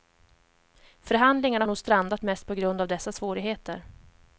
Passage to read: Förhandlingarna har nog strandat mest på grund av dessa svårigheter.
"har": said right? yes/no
no